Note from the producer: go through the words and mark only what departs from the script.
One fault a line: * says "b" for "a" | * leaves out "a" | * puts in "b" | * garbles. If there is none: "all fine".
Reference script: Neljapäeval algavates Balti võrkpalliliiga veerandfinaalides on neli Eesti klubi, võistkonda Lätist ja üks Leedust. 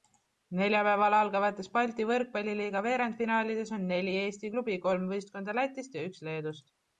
* puts in "kolm"